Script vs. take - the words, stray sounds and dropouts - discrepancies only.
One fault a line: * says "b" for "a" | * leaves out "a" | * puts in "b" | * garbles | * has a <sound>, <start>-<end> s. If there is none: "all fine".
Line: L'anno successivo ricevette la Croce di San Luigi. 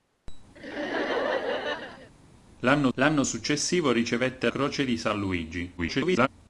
* has a laugh, 0.6-2.1 s
* puts in "l'anno"
* leaves out "la"
* garbles